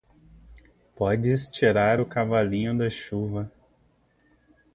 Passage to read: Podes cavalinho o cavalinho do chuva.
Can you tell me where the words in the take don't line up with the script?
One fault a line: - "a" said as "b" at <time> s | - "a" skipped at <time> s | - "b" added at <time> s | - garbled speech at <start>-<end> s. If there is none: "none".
- "cavalinho" said as "tirar" at 1.5 s
- "do" said as "da" at 2.8 s